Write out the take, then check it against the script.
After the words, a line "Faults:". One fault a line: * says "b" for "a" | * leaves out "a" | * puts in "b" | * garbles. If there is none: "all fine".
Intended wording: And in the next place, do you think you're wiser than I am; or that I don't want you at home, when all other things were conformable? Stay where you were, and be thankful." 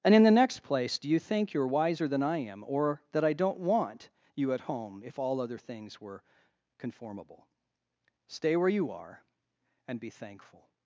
And in the next place, do you think you're wiser than I am; or that I don't want you at home, if all other things were conformable? Stay where you are, and be thankful."
Faults:
* says "if" for "when"
* says "are" for "were"